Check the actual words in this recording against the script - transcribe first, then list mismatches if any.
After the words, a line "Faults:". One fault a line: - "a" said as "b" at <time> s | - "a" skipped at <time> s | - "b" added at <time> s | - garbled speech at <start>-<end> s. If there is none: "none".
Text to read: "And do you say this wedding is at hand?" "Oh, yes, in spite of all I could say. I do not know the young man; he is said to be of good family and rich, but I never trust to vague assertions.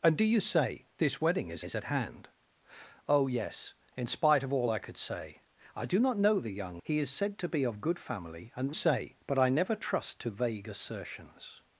"And do you say this wedding is is at hand?" "Oh, yes, in spite of all I could say. I do not know the young; he is said to be of good family and say, but I never trust to vague assertions.
Faults:
- "is" added at 1.6 s
- "man" skipped at 6.8 s
- "rich" said as "say" at 8.7 s